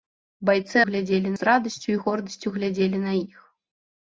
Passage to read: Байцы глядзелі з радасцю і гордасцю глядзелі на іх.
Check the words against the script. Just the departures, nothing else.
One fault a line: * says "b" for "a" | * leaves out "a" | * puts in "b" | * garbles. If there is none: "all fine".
all fine